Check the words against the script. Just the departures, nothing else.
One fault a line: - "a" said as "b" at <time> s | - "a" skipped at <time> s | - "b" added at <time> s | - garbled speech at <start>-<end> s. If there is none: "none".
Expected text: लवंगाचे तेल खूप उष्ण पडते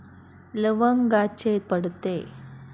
- "तेल खूप उष्ण" skipped at 1.6 s